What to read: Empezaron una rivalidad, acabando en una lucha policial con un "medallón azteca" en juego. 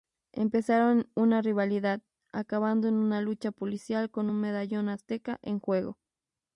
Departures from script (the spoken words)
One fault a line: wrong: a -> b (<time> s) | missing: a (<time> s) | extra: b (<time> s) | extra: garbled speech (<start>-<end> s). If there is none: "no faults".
no faults